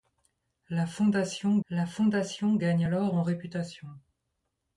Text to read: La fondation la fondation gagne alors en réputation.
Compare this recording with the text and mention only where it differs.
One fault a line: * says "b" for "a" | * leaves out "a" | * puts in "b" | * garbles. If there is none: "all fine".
all fine